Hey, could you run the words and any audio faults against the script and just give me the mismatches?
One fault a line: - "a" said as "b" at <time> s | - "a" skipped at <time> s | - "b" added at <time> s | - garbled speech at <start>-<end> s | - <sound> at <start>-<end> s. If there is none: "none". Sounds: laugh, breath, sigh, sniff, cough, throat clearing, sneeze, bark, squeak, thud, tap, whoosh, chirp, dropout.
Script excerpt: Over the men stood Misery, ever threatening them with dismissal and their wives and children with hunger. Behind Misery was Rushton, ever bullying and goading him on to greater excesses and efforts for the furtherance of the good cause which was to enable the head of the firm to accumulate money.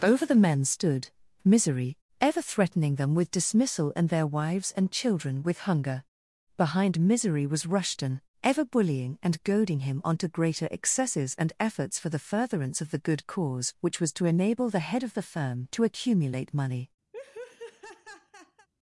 - laugh at 17.1-18.7 s